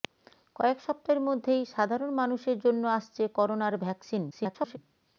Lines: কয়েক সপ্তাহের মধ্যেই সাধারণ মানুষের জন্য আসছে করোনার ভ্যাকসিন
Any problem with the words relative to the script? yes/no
yes